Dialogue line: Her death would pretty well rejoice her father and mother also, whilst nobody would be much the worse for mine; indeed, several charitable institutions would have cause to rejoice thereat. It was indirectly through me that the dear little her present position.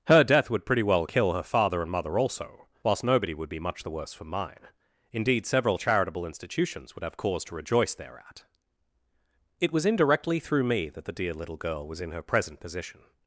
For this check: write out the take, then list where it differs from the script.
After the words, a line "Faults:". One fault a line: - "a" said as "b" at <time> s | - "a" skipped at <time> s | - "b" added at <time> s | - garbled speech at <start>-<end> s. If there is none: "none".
Her death would pretty well kill her father and mother also, whilst nobody would be much the worse for mine; indeed, several charitable institutions would have cause to rejoice thereat. It was indirectly through me that the dear little girl was in her present position.
Faults:
- "rejoice" said as "kill" at 1.0 s
- "girl was in" added at 11.6 s